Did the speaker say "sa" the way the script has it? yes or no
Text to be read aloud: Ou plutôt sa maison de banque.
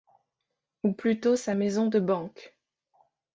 yes